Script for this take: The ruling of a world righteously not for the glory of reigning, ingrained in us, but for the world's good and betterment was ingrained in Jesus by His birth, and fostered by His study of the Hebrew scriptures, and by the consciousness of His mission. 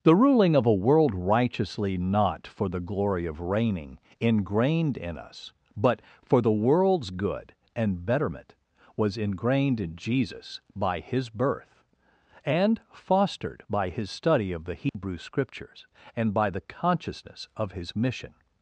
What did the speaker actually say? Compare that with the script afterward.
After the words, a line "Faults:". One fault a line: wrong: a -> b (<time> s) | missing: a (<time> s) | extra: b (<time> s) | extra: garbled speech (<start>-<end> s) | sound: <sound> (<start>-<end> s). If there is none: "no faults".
The ruling of a world righteously not for the glory of reigning, ingrained in us, but for the world's good and betterment was ingrained in Jesus by His birth, and fostered by His study of the Hebrew scriptures, and by the consciousness of His mission.
Faults:
sound: dropout (14.9-14.9 s)